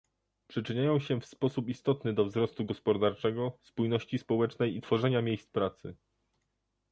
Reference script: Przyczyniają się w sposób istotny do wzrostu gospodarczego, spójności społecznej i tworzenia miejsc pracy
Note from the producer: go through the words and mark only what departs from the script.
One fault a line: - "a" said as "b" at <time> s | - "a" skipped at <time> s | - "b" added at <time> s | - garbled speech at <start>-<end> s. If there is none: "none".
none